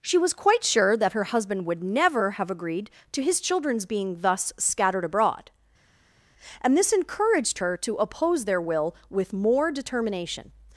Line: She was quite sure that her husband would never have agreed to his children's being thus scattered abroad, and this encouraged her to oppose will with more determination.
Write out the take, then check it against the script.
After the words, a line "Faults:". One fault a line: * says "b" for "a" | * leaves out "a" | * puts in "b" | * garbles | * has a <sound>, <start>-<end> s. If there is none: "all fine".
She was quite sure that her husband would never have agreed to his children's being thus scattered abroad, and this encouraged her to oppose their will with more determination.
Faults:
* puts in "their"